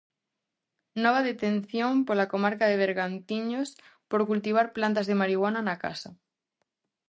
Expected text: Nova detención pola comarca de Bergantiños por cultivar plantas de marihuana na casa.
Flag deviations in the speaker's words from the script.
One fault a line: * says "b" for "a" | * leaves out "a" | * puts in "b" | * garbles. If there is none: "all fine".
all fine